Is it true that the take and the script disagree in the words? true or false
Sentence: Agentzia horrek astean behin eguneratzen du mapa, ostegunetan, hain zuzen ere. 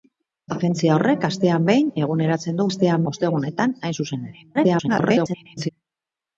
true